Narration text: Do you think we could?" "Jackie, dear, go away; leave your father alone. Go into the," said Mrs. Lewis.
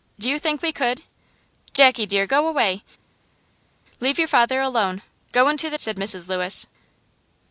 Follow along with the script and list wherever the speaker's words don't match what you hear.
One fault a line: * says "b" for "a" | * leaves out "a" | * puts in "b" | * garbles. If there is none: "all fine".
all fine